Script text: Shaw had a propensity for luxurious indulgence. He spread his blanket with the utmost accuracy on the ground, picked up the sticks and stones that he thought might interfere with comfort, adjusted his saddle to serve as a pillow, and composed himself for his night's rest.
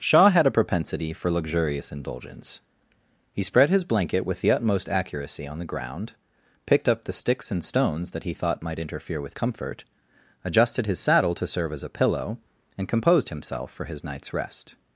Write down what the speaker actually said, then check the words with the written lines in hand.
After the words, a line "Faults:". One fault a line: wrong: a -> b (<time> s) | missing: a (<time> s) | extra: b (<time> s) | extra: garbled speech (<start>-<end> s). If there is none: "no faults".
Shaw had a propensity for luxurious indulgence. He spread his blanket with the utmost accuracy on the ground, picked up the sticks and stones that he thought might interfere with comfort, adjusted his saddle to serve as a pillow, and composed himself for his night's rest.
Faults:
no faults